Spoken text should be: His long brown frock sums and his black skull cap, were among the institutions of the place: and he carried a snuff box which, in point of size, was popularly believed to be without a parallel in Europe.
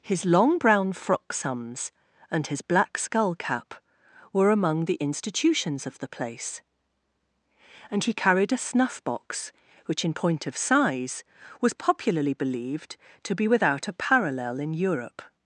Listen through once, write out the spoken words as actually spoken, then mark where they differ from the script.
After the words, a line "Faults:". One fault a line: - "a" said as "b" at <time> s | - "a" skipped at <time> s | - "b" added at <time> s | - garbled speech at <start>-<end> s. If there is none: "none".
His long brown frock sums and his black skull cap, were among the institutions of the place: and he carried a snuff box which, in point of size, was popularly believed to be without a parallel in Europe.
Faults:
none